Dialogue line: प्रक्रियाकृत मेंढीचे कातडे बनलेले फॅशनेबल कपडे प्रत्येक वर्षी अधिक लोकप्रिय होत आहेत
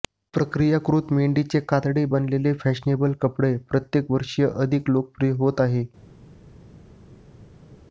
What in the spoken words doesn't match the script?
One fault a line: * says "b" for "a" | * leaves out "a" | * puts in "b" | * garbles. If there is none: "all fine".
all fine